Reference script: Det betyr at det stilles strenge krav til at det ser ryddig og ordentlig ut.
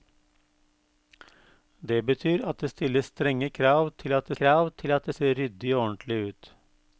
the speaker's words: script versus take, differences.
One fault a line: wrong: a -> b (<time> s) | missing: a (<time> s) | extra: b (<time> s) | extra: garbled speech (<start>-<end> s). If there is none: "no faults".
extra: krav til at (4.4 s)